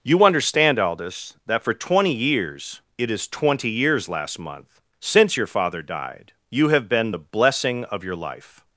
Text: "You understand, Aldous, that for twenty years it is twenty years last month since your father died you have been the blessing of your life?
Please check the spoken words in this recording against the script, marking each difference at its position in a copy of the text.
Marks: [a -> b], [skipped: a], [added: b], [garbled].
"You understand, Aldous, that for twenty years it is twenty years last month since your father died you have been the blessing of your life?